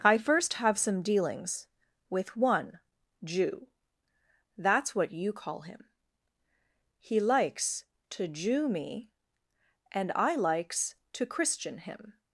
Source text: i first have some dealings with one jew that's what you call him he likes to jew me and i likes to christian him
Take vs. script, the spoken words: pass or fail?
pass